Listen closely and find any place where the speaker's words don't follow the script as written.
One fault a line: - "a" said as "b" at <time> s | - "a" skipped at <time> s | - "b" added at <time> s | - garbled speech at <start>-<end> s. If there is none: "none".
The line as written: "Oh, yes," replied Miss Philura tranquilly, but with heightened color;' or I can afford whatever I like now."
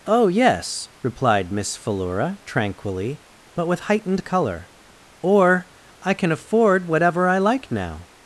none